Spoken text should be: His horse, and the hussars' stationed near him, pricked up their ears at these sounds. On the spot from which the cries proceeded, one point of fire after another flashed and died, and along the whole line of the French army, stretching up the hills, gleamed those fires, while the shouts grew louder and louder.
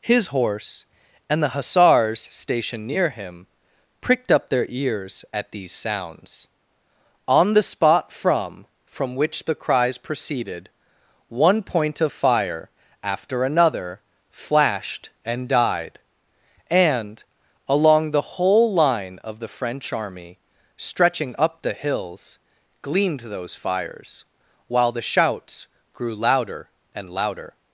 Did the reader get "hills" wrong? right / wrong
right